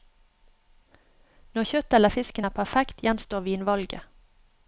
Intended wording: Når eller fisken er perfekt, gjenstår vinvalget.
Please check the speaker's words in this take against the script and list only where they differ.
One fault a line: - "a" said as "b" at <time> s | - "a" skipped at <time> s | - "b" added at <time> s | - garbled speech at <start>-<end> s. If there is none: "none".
- "kjøttet" added at 1.7 s